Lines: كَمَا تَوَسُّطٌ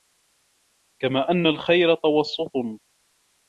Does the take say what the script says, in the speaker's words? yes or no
no